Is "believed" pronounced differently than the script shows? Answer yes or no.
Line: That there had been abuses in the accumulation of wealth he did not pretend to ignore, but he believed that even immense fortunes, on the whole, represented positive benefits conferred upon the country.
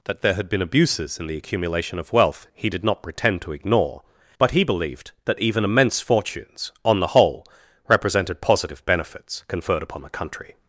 no